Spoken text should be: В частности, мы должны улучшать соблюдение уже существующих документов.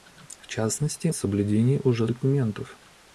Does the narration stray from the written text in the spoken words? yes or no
yes